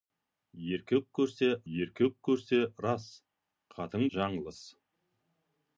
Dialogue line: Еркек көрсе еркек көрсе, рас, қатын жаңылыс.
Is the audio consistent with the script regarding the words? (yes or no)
yes